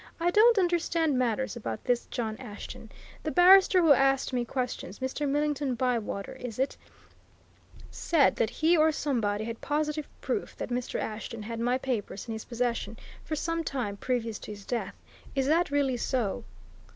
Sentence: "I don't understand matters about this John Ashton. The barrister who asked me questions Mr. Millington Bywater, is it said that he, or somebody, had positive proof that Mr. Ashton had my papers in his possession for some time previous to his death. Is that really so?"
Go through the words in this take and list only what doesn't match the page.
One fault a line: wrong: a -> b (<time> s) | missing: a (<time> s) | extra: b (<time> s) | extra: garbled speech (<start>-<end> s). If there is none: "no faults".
no faults